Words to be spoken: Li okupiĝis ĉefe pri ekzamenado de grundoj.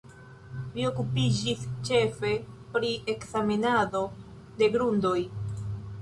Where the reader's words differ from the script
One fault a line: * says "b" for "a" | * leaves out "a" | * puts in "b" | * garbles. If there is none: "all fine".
all fine